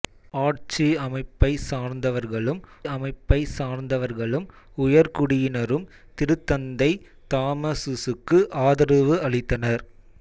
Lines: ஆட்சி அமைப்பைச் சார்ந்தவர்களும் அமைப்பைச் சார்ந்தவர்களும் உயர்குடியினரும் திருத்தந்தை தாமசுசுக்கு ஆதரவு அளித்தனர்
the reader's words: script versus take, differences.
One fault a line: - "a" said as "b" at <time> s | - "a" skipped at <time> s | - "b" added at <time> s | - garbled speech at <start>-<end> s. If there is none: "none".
none